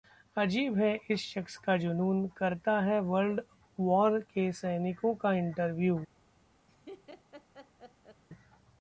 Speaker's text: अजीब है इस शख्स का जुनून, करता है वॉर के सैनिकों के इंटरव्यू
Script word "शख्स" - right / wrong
right